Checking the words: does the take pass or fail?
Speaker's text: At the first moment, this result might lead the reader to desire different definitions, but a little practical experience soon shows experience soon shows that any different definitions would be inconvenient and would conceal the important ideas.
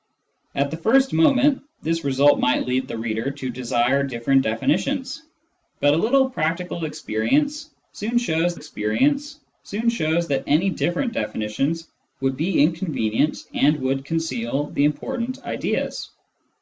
pass